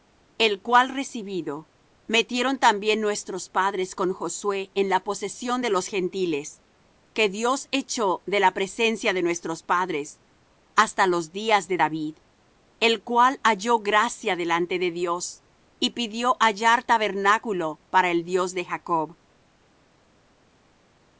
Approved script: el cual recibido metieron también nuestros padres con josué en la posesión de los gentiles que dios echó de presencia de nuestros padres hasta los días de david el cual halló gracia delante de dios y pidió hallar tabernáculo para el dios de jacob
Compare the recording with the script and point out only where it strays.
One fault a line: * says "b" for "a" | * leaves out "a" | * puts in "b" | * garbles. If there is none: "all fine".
* puts in "la"